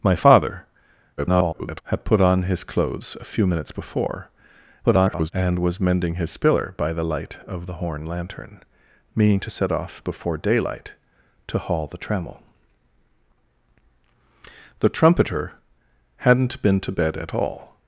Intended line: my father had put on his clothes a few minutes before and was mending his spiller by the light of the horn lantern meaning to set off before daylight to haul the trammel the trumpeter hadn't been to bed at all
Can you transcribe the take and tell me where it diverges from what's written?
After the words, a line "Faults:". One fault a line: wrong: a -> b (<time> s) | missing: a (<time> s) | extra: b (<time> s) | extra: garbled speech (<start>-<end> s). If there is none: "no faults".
my father [garbled] had put on his clothes a few minutes before [garbled] and was mending his spiller by the light of the horn lantern meaning to set off before daylight to haul the trammel the trumpeter hadn't been to bed at all
Faults:
extra: garbled speech (1.2-1.8 s)
extra: garbled speech (4.8-5.3 s)